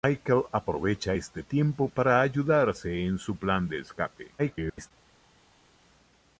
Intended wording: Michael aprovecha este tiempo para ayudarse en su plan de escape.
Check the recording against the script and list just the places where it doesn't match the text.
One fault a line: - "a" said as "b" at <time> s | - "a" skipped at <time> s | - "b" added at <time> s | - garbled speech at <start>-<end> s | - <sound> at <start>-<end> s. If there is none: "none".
- garbled speech at 4.4-4.9 s